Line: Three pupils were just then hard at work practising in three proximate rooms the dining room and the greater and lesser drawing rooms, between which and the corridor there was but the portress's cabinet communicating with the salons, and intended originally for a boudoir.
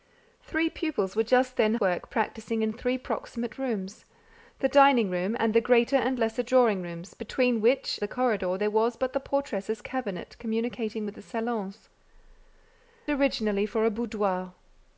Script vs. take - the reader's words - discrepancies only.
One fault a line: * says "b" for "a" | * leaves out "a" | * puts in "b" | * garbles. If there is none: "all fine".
* leaves out "hard at"
* leaves out "and"
* leaves out "and intended"